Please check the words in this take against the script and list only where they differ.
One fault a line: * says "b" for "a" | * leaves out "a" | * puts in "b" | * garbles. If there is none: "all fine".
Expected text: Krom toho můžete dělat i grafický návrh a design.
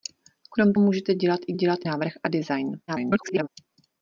* leaves out "toho"
* says "dělat" for "grafický"
* garbles